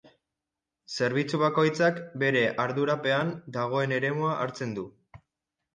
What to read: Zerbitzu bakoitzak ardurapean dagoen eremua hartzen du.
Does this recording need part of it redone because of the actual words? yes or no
yes